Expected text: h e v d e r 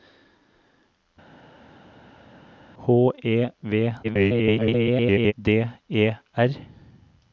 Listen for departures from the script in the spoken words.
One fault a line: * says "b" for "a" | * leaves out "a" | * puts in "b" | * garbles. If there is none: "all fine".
* garbles